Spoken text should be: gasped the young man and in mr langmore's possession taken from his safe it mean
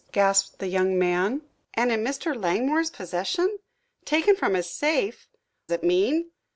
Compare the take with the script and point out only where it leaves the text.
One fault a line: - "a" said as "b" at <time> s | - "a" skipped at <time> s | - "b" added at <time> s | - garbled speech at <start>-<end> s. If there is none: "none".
none